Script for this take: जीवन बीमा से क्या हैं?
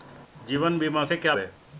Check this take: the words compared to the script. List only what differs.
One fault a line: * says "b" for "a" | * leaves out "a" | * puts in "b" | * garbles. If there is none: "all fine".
all fine